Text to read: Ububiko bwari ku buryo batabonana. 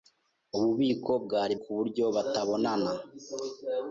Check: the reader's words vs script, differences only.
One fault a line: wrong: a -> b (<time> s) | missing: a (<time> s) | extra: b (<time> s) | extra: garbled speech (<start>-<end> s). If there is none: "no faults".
no faults